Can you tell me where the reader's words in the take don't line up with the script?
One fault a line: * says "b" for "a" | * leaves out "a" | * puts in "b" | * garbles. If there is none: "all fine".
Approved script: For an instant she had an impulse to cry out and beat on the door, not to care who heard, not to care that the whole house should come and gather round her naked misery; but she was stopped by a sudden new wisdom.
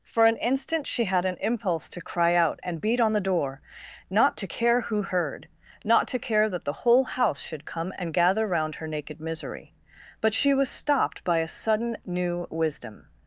all fine